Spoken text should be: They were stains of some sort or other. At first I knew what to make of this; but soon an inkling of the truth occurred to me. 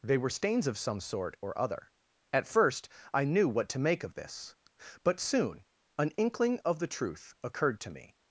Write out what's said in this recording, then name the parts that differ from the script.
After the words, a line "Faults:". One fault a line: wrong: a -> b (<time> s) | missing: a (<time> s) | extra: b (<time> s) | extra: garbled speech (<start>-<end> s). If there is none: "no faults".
They were stains of some sort or other. At first I knew what to make of this; but soon an inkling of the truth occurred to me.
Faults:
no faults